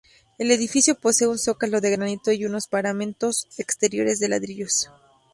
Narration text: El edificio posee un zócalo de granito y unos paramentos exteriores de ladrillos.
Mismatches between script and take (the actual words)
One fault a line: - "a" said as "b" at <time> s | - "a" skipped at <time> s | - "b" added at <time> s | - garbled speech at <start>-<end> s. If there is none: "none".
none